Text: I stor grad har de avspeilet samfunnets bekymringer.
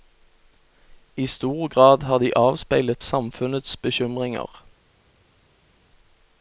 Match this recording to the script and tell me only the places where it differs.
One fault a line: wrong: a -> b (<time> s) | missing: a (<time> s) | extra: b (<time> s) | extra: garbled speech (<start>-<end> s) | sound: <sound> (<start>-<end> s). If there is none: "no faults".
no faults